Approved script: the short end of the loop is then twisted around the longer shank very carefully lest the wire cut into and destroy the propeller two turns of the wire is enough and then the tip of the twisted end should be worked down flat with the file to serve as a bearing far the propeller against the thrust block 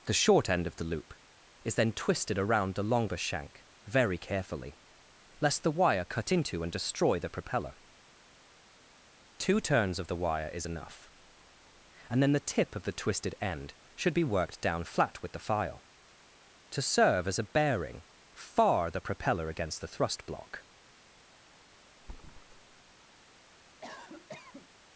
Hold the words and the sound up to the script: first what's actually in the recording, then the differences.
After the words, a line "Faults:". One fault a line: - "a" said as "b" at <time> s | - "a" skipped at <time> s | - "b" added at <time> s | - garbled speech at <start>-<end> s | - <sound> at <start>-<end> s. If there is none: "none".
the short end of the loop is then twisted around the longer shank very carefully lest the wire cut into and destroy the propeller two turns of the wire is enough and then the tip of the twisted end should be worked down flat with the file to serve as a bearing far the propeller against the thrust block
Faults:
- thud at 22.0-22.9 s
- cough at 23.8-24.7 s